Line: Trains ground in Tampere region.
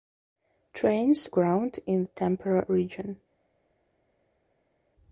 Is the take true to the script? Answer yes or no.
yes